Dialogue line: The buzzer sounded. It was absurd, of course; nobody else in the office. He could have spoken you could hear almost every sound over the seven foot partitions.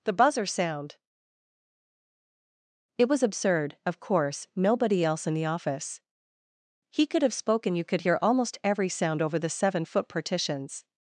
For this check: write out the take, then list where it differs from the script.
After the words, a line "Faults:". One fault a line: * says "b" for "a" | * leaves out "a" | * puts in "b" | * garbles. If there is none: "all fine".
The buzzer sound. It was absurd, of course; nobody else in the office. He could have spoken you could hear almost every sound over the seven foot partitions.
Faults:
* says "sound" for "sounded"